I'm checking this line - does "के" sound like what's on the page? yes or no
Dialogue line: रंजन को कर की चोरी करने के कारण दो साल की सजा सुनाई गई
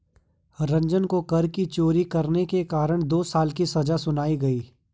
yes